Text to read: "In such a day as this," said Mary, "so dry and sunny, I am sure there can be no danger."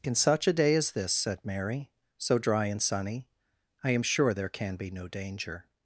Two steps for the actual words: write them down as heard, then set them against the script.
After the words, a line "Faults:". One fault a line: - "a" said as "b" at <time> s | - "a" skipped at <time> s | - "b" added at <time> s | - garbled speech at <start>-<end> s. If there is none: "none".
"In such a day as this," said Mary, "so dry and sunny, I am sure there can be no danger."
Faults:
none